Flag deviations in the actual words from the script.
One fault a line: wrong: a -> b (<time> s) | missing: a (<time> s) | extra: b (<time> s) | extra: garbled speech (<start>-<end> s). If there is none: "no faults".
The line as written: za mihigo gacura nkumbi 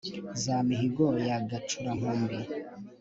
extra: ya (1.3 s)